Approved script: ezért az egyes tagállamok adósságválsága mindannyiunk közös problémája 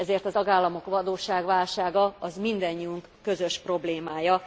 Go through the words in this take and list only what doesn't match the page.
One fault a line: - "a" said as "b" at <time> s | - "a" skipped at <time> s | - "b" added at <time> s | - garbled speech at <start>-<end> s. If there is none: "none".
- "egyes" skipped at 0.3 s